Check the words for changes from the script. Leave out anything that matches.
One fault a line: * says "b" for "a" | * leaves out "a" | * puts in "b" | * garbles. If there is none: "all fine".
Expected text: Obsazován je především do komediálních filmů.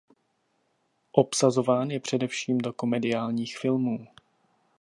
all fine